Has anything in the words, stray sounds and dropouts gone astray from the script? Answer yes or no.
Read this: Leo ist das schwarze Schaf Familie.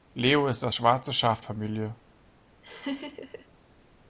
yes